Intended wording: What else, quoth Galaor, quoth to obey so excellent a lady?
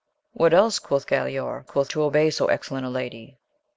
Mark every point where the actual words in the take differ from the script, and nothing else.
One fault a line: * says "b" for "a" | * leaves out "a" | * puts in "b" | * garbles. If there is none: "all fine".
all fine